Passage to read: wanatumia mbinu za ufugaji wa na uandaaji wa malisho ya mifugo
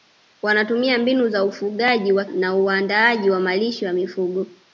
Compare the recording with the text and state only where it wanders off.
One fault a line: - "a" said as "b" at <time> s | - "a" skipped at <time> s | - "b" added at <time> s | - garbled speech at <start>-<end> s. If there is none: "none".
none